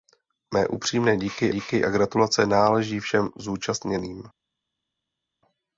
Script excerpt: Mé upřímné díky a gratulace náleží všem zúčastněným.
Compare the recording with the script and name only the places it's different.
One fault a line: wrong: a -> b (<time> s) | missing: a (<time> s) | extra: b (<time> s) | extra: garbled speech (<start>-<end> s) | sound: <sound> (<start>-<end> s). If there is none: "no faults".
extra: díky (1.5 s)